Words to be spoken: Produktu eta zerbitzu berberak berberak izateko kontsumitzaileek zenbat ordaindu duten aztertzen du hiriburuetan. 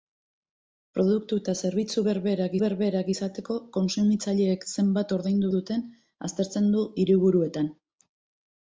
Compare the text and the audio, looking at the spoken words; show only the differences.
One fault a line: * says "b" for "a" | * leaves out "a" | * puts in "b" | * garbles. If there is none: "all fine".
all fine